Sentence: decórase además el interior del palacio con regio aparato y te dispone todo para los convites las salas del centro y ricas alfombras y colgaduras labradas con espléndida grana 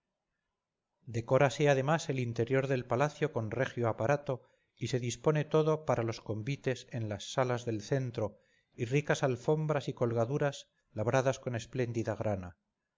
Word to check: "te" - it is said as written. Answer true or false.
false